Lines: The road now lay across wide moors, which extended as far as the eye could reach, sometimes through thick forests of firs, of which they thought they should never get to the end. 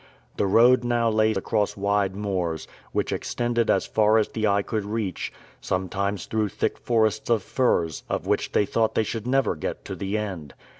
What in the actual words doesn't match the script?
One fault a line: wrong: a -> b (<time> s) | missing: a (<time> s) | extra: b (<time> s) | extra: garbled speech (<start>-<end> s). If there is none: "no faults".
no faults